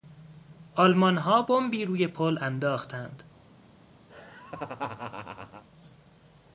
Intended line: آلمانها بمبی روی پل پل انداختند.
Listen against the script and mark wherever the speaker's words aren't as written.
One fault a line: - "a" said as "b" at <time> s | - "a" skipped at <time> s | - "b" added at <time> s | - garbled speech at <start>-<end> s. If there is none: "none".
- "پل" skipped at 2.4 s